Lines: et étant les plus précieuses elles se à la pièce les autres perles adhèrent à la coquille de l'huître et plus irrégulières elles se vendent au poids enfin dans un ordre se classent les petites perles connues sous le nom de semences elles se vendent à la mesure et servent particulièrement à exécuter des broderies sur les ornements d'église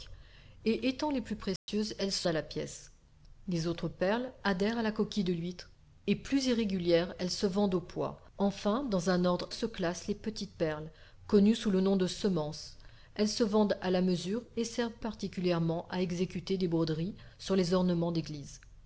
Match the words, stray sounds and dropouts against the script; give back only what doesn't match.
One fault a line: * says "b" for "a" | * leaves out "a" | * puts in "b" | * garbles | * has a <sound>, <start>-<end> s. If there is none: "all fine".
* has a dropout, 1.6-1.7 s